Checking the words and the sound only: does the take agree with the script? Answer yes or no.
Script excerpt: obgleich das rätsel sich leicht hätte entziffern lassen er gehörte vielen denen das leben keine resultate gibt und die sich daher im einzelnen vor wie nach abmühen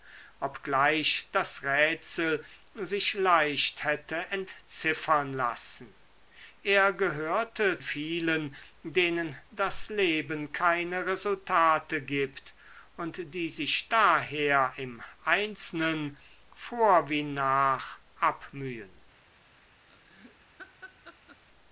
no